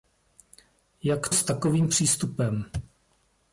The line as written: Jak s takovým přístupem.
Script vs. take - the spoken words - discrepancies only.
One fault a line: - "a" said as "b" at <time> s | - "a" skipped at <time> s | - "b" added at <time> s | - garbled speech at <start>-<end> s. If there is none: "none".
none